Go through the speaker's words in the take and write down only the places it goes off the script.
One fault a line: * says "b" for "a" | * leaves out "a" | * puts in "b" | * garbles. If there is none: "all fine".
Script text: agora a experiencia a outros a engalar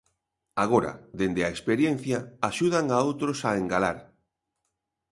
* puts in "dende"
* puts in "axudan"